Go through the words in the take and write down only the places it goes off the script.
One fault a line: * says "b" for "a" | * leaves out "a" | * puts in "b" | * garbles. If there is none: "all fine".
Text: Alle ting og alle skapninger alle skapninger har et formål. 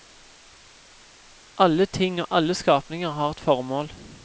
* leaves out "alle skapninger"